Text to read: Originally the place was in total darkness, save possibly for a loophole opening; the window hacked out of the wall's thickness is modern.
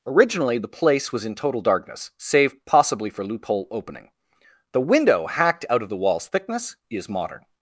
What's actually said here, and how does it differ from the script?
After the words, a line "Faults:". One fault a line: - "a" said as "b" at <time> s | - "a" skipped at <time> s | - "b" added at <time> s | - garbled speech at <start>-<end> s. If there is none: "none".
Originally the place was in total darkness, save possibly for loophole opening; the window hacked out of the wall's thickness is modern.
Faults:
- "a" skipped at 3.2 s